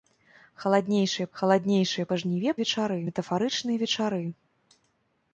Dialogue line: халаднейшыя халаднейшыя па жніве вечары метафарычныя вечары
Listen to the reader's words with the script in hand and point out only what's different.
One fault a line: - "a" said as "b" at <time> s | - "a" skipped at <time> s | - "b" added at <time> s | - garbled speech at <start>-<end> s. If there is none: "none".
none